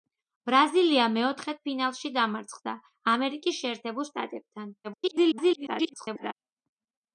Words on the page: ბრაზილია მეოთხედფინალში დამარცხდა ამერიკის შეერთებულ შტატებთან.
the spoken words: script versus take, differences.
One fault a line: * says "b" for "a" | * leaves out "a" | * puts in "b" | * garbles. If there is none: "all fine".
* garbles